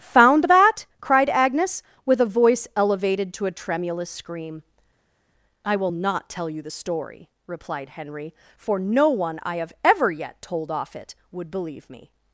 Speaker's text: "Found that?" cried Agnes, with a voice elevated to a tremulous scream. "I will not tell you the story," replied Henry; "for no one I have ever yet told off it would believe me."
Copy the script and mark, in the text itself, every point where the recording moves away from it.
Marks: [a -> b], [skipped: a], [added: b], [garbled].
"Found that?" cried Agnes, with a voice elevated to a tremulous scream. "I will not tell you the story," replied Henry; "for no one I have ever yet told off it would believe me."